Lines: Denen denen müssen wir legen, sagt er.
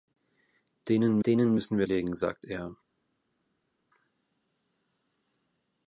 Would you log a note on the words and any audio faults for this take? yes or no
no